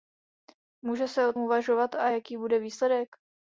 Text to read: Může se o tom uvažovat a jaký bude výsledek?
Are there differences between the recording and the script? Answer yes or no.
yes